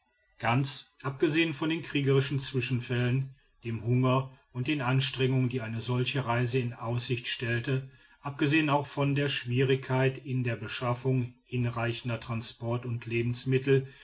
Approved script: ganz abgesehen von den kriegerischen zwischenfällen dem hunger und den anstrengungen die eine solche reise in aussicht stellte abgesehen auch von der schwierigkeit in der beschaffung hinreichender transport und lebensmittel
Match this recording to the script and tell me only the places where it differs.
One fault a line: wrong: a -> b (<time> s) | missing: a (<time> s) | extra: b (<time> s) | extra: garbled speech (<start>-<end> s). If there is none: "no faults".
no faults